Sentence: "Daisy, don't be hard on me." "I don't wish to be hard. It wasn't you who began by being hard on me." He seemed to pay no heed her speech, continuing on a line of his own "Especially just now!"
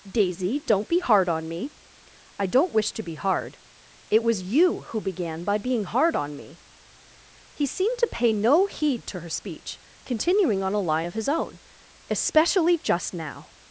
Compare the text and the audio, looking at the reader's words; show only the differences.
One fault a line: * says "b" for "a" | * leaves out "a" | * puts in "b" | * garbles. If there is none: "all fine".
* says "was" for "wasn't"
* puts in "to"